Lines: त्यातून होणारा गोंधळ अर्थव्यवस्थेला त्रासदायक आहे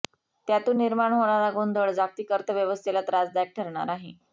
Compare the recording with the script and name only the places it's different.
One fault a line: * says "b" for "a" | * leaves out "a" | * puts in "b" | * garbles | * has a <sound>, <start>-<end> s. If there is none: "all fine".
* puts in "निर्माण"
* puts in "जागतिक"
* puts in "ठरणार"